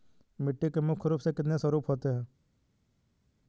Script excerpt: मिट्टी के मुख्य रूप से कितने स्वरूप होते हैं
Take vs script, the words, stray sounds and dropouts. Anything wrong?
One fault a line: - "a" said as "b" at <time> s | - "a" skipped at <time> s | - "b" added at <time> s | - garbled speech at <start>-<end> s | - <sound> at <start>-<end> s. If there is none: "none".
none